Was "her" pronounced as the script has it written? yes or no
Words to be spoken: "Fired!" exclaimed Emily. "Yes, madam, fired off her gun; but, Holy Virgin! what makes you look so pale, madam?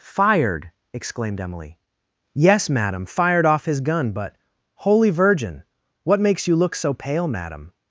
no